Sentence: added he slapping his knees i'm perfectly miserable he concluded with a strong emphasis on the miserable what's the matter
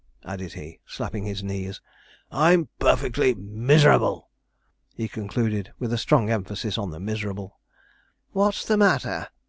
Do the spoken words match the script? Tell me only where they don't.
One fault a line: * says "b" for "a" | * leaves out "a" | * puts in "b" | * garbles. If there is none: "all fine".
all fine